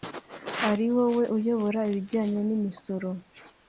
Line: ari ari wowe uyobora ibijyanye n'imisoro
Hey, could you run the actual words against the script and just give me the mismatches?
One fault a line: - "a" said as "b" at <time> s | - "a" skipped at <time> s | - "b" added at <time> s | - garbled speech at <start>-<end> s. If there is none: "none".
- "ari" skipped at 0.8 s